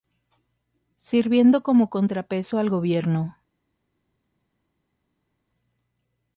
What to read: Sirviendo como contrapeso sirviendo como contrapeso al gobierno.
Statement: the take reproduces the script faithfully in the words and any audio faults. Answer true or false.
false